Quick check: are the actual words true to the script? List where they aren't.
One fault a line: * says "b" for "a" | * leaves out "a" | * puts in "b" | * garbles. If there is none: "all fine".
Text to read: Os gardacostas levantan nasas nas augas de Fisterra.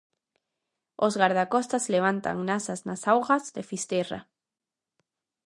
all fine